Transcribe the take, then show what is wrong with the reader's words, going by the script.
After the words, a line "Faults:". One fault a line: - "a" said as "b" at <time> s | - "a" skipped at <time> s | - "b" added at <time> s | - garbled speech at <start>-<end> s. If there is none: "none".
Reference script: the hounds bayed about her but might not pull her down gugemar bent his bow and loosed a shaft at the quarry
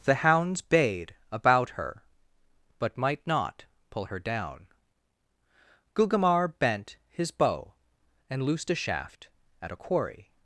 the hounds bayed about her but might not pull her down gugemar bent his bow and loosed a shaft at a quarry
Faults:
- "the" said as "a" at 9.7 s